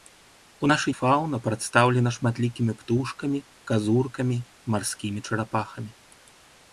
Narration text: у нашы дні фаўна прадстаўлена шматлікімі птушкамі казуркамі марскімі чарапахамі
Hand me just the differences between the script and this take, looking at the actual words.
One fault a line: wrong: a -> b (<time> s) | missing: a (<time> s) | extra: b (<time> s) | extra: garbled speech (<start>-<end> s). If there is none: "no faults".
missing: дні (0.9 s)